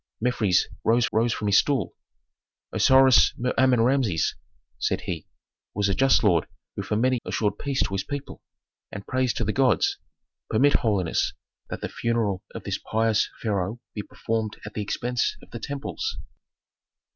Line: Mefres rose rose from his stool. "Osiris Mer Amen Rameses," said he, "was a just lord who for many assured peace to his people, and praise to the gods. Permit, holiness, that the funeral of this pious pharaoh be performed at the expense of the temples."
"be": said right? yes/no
yes